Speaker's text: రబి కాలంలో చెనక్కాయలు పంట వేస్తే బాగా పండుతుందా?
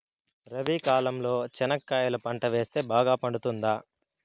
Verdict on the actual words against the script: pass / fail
pass